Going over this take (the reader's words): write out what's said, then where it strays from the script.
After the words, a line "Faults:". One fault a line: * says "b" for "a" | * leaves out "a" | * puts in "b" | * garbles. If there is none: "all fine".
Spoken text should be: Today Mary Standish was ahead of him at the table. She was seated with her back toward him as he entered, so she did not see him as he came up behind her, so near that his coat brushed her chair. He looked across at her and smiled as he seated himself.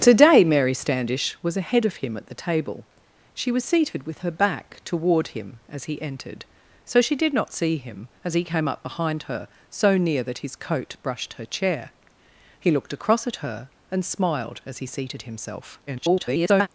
Today Mary Standish was ahead of him at the table. She was seated with her back toward him as he entered, so she did not see him as he came up behind her, so near that his coat brushed her chair. He looked across at her and smiled as he seated himself. [garbled]
Faults:
* garbles